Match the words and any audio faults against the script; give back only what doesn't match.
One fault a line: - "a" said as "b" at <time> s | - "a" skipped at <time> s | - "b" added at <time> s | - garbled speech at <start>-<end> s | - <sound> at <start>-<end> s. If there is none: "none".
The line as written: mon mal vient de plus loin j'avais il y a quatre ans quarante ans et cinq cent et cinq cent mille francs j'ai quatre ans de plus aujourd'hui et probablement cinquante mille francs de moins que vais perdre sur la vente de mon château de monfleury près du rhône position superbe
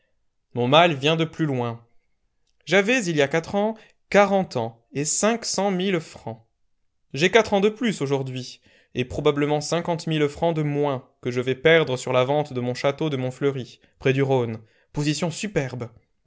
- "et cinq cent" skipped at 5.7 s
- "je" added at 11.3 s